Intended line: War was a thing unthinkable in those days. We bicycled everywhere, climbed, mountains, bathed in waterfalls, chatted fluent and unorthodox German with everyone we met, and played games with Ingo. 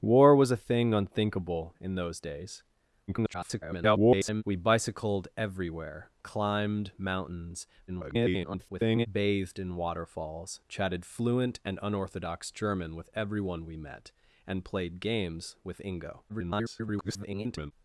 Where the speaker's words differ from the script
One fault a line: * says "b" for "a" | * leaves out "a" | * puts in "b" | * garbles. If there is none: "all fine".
* garbles
* garbles
* garbles